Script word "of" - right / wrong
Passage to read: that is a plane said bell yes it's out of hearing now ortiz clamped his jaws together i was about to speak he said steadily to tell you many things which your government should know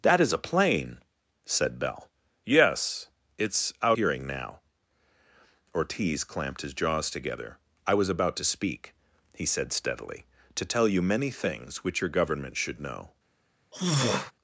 wrong